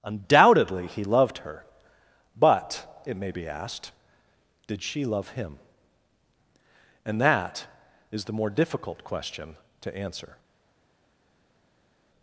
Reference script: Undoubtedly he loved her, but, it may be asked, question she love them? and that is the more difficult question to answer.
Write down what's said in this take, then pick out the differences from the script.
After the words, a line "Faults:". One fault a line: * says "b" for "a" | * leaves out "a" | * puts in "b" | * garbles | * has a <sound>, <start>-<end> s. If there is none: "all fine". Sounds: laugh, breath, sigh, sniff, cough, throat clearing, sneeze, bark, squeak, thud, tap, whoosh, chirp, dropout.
Undoubtedly he loved her, but, it may be asked, did she love him? and that is the more difficult question to answer.
Faults:
* says "did" for "question"
* says "him" for "them"